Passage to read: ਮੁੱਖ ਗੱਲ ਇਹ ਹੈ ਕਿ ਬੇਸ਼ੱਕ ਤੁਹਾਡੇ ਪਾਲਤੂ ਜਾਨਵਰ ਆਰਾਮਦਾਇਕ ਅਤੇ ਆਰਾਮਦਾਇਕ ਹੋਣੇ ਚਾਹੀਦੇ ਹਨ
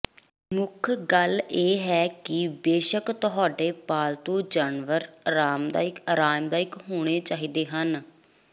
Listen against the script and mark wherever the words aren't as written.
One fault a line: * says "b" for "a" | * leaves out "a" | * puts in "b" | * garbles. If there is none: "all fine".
* leaves out "ਅਤੇ"